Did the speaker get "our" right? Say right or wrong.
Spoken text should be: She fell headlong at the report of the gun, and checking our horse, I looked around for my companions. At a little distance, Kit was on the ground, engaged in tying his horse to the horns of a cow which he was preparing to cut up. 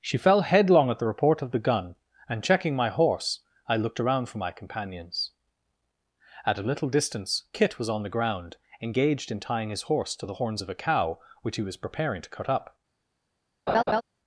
wrong